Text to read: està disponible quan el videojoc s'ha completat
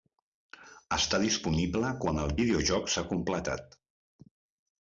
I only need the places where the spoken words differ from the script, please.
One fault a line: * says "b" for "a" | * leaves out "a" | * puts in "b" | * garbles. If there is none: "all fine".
all fine